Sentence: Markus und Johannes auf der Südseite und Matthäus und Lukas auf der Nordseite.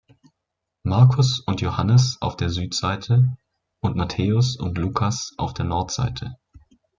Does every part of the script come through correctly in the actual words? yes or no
yes